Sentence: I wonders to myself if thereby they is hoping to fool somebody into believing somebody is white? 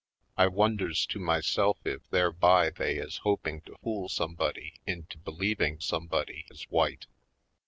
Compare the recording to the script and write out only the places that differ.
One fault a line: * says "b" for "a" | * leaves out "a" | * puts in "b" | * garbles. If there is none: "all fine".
all fine